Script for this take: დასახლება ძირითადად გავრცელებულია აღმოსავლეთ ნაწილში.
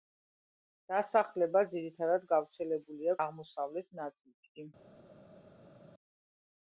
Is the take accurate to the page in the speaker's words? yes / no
yes